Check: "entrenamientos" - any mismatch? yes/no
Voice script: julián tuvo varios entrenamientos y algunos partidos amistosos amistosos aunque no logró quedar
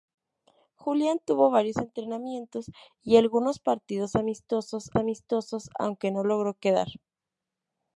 no